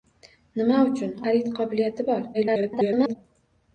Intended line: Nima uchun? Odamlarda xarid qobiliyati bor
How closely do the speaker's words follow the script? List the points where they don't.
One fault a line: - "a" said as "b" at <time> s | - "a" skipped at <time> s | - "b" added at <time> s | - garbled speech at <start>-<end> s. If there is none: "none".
- "Odamlarda" skipped at 1.1 s
- garbled speech at 2.3-3.2 s